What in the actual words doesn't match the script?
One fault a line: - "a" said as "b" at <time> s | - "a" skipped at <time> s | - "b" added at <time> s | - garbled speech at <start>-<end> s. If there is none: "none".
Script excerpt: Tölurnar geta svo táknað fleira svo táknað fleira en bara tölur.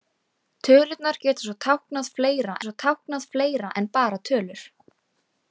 none